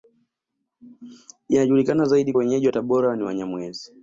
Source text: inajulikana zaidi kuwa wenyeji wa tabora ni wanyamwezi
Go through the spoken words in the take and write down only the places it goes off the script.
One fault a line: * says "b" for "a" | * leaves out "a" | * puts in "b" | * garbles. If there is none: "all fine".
* leaves out "kuwa"